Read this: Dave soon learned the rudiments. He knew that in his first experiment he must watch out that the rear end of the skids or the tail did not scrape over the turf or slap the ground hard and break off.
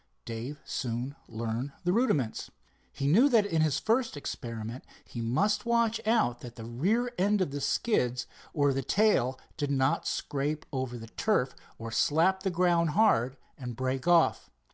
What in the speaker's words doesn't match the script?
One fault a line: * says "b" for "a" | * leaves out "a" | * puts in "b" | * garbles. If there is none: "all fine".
all fine